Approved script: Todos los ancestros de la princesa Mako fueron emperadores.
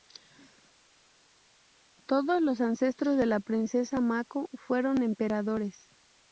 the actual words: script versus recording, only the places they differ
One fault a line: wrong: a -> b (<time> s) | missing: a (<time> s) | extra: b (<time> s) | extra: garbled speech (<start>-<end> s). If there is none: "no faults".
no faults